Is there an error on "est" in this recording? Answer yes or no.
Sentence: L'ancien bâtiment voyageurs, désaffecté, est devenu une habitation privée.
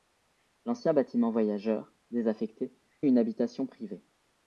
yes